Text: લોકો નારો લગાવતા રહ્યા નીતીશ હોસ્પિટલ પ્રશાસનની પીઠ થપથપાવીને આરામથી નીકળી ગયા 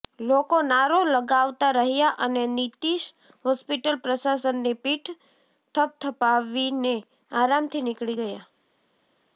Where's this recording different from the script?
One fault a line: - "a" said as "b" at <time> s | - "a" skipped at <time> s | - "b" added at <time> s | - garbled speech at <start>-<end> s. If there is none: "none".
- "અને" added at 2.2 s